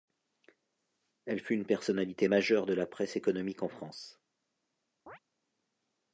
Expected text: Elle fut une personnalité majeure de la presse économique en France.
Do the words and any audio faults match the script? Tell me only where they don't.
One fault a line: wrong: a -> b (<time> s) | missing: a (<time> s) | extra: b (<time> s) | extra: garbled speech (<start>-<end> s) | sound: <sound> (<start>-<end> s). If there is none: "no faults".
sound: chirp (5.1-5.2 s)